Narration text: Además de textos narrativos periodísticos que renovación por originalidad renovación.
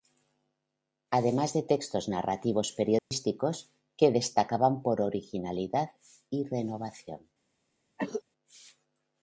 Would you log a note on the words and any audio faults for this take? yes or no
yes